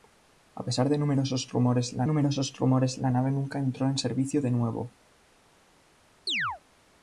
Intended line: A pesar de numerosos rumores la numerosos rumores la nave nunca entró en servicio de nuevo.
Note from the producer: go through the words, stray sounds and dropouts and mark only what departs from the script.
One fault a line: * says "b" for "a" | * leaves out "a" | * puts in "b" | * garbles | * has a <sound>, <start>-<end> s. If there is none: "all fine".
* has a chirp, 6.3-6.6 s